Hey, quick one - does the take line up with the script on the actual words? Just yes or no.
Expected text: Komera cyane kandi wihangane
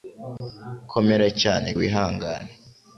no